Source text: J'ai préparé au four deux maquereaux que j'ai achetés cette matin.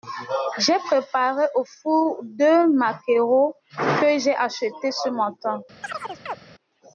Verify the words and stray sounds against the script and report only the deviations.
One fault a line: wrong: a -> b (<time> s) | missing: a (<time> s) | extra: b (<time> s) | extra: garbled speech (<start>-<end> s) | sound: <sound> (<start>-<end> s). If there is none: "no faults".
wrong: cette -> ce (4.9 s)
sound: chirp (5.8-6.4 s)